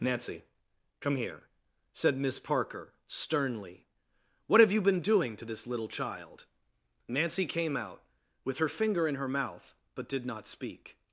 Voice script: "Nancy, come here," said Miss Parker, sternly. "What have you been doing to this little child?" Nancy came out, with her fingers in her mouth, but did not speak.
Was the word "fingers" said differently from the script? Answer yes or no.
yes